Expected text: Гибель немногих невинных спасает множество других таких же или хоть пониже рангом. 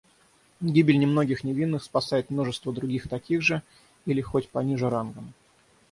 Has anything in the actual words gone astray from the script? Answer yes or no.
no